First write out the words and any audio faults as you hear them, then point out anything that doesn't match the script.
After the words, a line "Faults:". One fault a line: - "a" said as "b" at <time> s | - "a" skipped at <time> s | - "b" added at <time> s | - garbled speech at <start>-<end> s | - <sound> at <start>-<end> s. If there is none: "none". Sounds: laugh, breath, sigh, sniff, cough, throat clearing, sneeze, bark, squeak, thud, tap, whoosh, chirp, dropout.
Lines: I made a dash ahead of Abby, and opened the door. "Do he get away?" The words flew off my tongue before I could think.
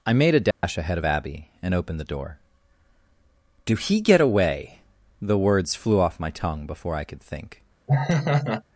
I made a dash ahead of Abby, and opened the door. "Do he get away?" The words flew off my tongue before I could think.
Faults:
- dropout at 0.5-0.6 s
- laugh at 7.9-8.6 s